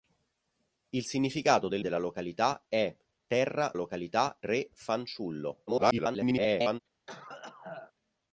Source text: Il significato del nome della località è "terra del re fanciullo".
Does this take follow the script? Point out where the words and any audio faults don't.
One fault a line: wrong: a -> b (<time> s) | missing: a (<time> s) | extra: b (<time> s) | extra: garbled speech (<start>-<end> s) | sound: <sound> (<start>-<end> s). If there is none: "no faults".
missing: nome (1.8 s)
wrong: del -> località (3.7 s)
extra: garbled speech (5.7-6.8 s)
sound: cough (7.1-7.9 s)